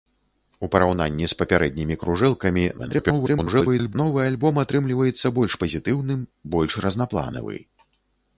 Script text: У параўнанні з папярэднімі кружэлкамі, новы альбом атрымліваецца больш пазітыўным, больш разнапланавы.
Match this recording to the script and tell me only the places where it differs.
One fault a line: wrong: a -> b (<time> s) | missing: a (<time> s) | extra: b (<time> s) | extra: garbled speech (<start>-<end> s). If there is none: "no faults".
extra: garbled speech (2.8-4.0 s)